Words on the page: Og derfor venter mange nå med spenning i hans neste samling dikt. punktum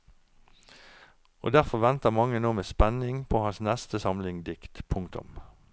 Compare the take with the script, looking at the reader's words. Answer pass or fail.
fail